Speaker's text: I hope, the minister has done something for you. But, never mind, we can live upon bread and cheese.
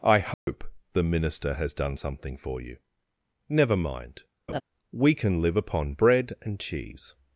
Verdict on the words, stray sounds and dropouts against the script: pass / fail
fail